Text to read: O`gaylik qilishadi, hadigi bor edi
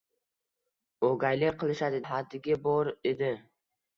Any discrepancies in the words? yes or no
no